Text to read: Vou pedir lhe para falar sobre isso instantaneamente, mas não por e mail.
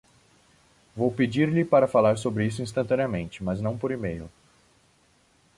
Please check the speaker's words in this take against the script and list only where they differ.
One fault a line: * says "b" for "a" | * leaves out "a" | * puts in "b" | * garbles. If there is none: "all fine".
all fine